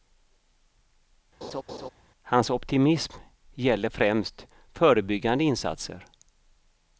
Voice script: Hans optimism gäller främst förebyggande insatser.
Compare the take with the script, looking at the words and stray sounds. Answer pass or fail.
fail